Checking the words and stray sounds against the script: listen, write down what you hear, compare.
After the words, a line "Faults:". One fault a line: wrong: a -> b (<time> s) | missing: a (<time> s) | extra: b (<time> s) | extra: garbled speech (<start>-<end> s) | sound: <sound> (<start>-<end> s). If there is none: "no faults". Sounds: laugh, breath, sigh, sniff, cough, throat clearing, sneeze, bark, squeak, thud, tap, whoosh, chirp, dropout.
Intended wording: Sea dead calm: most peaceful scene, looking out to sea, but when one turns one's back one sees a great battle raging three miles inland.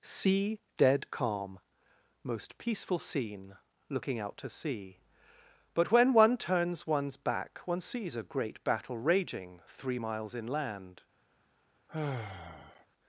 Sea dead calm: most peaceful scene, looking out to sea, but when one turns one's back one sees a great battle raging three miles inland.
Faults:
sound: sigh (11.9-12.9 s)